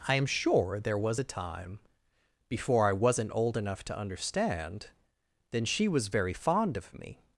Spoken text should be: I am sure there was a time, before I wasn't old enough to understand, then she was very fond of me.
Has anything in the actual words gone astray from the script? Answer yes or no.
no